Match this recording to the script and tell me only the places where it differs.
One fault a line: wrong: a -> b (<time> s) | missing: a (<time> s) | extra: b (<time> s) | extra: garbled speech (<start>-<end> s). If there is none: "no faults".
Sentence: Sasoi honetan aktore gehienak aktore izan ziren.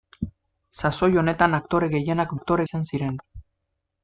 no faults